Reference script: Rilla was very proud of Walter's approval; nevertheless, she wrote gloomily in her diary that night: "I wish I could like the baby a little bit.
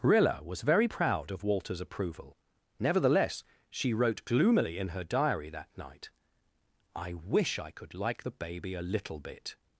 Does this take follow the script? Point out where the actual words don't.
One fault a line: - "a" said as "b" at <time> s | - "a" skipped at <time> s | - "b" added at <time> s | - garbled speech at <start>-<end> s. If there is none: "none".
none